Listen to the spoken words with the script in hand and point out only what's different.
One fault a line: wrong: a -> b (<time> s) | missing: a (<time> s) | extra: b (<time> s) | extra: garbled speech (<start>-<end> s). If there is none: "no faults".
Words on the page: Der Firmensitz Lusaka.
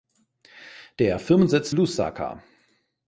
no faults